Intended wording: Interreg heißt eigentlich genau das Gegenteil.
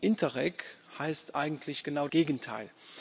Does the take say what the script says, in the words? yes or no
no